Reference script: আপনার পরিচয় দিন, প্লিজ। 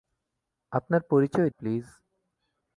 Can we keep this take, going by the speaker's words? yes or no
no